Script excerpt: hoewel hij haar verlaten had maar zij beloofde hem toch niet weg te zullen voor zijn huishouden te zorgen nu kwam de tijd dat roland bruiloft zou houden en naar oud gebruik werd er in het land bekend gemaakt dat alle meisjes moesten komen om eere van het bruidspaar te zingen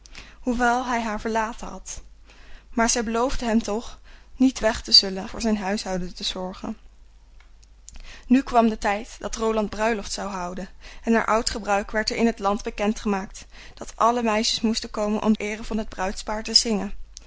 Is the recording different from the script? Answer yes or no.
no